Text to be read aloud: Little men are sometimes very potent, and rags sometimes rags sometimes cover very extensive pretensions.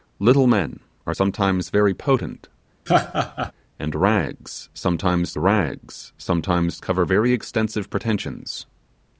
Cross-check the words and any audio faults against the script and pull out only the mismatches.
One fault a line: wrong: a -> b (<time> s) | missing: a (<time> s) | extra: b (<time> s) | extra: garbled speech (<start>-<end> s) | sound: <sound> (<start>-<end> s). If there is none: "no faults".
sound: laugh (2.9-3.5 s)